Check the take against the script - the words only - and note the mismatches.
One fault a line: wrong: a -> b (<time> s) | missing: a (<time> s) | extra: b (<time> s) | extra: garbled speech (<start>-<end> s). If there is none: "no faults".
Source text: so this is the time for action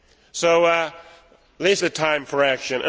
missing: is (1.8 s)